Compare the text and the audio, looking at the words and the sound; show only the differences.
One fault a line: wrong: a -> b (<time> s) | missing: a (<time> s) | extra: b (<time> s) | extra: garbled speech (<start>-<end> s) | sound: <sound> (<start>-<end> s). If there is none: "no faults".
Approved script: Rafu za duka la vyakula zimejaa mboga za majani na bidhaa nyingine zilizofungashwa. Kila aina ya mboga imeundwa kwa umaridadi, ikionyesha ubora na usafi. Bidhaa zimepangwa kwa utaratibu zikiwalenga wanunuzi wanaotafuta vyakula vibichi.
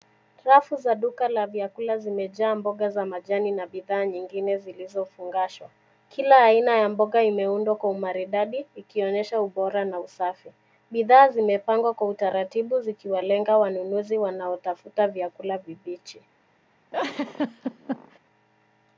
sound: laugh (16.9-18.2 s)